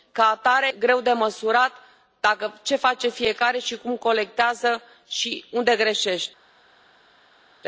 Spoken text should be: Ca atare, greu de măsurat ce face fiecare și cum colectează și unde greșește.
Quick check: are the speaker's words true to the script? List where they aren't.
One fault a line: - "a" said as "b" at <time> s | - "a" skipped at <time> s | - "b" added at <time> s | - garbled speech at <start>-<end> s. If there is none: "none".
none